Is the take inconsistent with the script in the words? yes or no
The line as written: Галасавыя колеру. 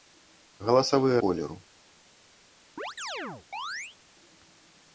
no